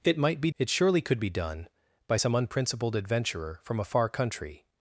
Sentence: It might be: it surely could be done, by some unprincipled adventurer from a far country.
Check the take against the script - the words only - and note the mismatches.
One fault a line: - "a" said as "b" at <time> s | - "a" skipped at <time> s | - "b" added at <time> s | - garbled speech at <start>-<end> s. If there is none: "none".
none